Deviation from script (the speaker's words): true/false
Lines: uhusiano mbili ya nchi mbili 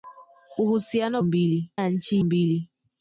false